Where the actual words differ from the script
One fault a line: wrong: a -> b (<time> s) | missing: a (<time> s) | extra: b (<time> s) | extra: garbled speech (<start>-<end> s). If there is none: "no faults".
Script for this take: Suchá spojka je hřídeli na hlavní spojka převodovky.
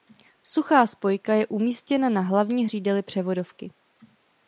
wrong: hřídeli -> umístěna (1.5 s)
wrong: spojka -> hřídeli (2.6 s)